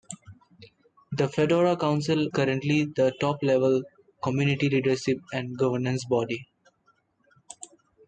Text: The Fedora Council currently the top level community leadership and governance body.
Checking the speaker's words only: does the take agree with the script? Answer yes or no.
yes